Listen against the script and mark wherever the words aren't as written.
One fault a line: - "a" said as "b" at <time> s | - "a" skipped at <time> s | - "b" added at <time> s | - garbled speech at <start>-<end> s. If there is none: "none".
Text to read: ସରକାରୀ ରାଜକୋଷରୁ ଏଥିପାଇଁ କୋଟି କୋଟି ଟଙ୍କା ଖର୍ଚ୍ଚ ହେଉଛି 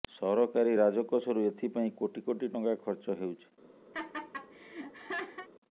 none